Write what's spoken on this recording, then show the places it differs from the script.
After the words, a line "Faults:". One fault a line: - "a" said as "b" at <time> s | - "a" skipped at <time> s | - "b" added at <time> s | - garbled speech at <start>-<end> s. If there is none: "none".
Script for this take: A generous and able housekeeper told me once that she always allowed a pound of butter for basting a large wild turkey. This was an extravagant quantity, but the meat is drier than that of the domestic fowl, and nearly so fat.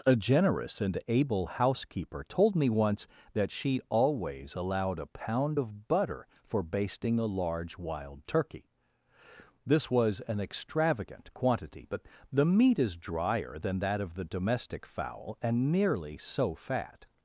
A generous and able housekeeper told me once that she always allowed a pound of butter for basting a large wild turkey. This was an extravagant quantity, but the meat is drier than that of the domestic fowl, and nearly so fat.
Faults:
none